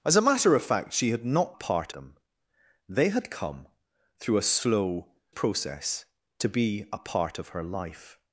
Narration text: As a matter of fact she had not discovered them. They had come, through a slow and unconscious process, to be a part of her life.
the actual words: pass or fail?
fail